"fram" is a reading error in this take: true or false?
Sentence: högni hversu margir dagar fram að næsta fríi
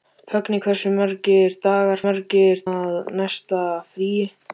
true